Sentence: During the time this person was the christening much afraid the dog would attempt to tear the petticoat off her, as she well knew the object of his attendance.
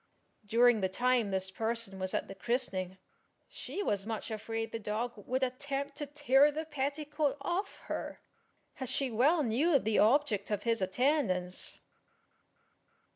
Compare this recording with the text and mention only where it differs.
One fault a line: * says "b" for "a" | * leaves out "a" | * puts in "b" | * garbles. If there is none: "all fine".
* puts in "at"
* puts in "she was"